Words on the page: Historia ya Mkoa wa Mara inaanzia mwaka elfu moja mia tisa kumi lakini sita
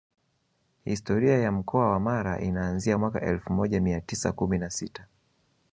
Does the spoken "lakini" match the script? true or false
false